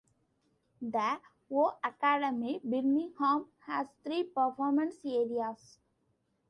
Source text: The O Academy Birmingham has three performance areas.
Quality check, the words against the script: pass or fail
pass